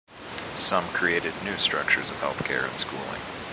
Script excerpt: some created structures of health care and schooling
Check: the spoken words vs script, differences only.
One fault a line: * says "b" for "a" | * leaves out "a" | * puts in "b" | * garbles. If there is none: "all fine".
* puts in "new"